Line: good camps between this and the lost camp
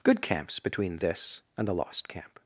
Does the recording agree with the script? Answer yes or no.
yes